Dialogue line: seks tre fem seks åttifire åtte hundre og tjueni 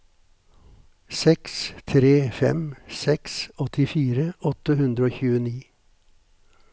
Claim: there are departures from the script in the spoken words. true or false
false